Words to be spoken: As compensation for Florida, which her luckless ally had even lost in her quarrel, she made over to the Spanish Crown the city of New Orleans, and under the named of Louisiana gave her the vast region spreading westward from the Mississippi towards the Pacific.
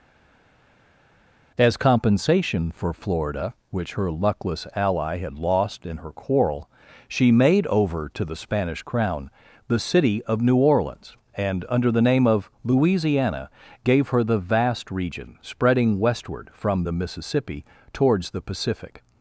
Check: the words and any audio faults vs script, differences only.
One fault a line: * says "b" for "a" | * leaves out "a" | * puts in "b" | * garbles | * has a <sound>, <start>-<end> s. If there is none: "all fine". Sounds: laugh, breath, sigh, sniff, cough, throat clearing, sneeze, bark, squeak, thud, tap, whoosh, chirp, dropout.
* leaves out "even"
* says "name" for "named"